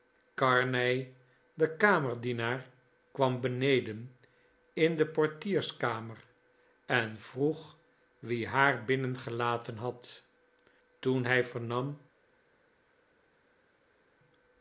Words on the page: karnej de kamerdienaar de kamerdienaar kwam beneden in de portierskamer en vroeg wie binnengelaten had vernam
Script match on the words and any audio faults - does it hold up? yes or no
no